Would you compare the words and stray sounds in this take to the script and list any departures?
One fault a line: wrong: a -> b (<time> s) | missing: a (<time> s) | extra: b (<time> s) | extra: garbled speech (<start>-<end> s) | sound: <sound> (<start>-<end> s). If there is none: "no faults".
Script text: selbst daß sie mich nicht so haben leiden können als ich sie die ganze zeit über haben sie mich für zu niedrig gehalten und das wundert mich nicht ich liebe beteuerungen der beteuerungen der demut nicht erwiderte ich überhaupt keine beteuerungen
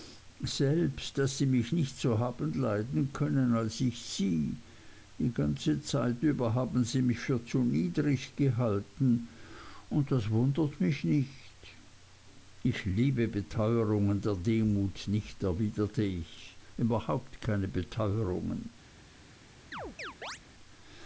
missing: beteuerungen der (14.3 s)
sound: chirp (19.7-20.4 s)